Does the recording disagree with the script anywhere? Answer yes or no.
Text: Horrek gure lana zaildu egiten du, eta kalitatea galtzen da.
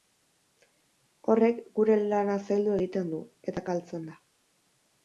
yes